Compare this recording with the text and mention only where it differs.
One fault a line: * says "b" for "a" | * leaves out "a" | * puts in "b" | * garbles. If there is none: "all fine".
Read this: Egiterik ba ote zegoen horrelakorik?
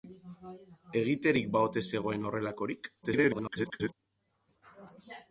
* garbles